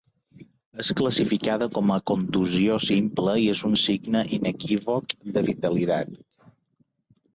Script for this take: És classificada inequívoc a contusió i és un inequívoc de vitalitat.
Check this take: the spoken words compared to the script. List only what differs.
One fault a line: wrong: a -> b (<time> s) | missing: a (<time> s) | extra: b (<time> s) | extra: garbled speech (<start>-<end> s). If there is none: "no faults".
wrong: inequívoc -> com (1.8 s)
extra: simple (2.9 s)
extra: signe (3.9 s)